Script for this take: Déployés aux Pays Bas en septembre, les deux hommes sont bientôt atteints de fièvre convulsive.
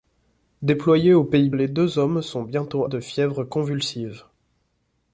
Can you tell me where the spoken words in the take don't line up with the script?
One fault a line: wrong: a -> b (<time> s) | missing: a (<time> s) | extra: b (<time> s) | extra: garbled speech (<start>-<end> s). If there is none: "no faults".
missing: Bas en septembre (1.5 s)
missing: atteints (2.9 s)